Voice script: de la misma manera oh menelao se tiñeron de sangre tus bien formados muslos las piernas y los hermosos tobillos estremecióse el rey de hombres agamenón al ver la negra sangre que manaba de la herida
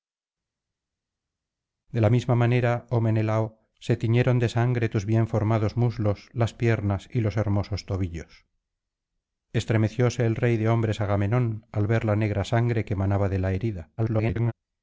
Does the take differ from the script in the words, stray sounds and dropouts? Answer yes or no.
yes